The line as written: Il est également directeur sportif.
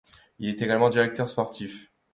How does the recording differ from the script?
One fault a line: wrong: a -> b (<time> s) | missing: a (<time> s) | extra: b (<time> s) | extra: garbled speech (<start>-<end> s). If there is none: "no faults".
no faults